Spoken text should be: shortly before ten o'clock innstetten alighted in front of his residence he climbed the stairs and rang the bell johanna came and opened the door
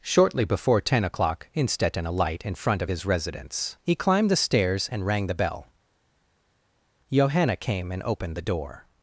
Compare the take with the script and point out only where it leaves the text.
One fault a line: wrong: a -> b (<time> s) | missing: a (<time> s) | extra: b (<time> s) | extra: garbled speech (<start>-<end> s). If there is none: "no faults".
wrong: alighted -> alight (2.0 s)